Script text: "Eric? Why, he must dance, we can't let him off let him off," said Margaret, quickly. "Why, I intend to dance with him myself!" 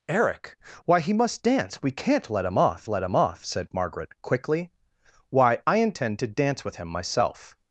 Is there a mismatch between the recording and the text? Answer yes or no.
no